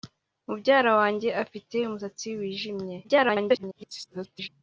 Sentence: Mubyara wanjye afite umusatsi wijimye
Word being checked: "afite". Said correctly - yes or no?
yes